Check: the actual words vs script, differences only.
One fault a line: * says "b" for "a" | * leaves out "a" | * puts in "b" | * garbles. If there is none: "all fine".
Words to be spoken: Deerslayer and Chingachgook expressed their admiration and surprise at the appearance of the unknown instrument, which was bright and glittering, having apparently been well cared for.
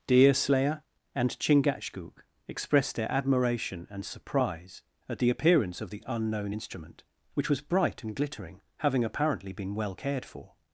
all fine